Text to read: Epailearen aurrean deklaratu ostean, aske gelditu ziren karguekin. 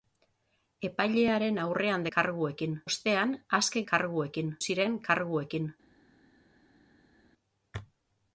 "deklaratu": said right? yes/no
no